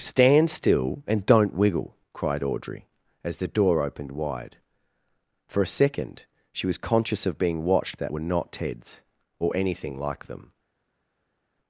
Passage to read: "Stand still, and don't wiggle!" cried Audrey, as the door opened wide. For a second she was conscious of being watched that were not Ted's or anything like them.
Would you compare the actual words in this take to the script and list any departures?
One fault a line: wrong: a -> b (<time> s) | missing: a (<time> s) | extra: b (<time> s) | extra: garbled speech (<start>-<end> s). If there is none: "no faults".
no faults